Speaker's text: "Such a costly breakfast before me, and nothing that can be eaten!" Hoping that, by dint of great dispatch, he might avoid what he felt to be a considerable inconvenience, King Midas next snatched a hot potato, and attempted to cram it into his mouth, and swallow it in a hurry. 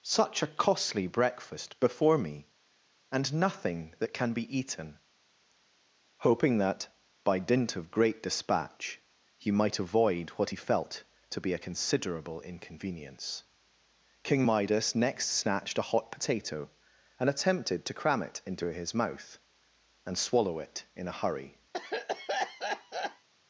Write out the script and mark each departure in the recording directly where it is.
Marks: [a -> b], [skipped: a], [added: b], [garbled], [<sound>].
"Such a costly breakfast before me, and nothing that can be eaten!" Hoping that, by dint of great dispatch, he might avoid what he felt to be a considerable inconvenience, King Midas next snatched a hot potato, and attempted to cram it into his mouth, and swallow it in a hurry. [cough]